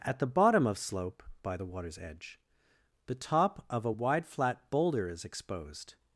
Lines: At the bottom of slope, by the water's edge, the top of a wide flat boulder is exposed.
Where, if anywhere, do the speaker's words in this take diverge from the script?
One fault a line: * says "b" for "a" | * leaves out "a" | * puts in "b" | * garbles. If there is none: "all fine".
all fine